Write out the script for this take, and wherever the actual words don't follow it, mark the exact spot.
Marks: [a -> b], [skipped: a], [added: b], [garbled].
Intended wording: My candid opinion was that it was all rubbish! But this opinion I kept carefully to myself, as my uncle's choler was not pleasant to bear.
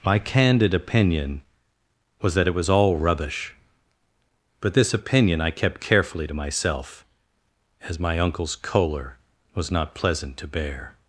My candid opinion was that it was all rubbish! But this opinion I kept carefully to myself, as my uncle's choler was not pleasant to bear.